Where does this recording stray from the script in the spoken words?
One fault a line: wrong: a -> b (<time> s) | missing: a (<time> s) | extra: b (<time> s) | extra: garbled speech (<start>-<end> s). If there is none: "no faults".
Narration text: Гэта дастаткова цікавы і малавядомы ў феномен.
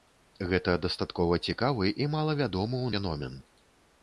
no faults